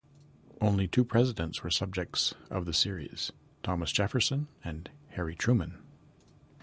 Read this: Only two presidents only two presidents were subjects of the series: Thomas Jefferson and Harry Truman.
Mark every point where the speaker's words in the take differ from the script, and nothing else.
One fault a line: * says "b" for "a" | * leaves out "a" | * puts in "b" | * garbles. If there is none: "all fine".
* leaves out "only two presidents"